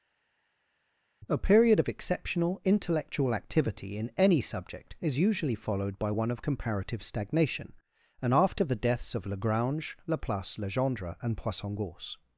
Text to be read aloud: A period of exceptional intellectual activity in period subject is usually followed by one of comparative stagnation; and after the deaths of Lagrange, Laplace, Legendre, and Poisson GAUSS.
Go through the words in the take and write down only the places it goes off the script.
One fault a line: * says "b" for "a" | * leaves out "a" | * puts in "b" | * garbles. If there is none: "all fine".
* says "any" for "period"